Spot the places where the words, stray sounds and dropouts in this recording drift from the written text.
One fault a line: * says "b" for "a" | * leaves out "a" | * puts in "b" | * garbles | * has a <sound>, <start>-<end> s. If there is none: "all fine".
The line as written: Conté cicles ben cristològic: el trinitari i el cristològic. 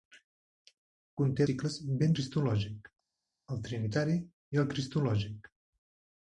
all fine